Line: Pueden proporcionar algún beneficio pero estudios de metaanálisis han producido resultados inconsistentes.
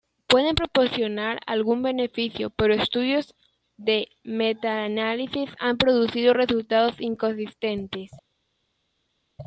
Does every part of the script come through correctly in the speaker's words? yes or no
yes